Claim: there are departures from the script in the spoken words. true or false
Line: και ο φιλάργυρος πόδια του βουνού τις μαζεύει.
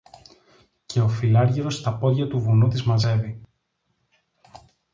true